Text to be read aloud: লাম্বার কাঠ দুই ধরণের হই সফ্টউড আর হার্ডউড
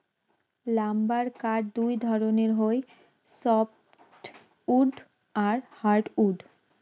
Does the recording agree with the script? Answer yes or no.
yes